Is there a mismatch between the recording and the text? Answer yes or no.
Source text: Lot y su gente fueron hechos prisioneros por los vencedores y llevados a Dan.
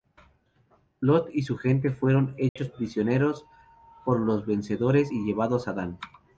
no